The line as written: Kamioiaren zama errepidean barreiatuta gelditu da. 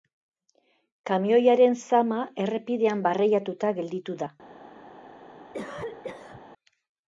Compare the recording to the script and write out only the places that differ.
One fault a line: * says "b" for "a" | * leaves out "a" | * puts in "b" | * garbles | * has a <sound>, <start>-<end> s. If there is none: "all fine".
* has a cough, 5.5-6.4 s